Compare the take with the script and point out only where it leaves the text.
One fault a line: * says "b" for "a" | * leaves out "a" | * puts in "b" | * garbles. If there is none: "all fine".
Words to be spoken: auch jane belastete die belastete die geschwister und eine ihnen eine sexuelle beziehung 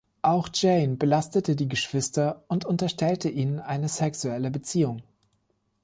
* leaves out "belastete die"
* says "unterstellte" for "eine"